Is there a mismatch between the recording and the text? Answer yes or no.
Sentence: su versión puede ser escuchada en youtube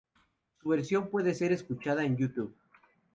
no